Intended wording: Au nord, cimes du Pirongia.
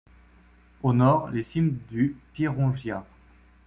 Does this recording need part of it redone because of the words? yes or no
yes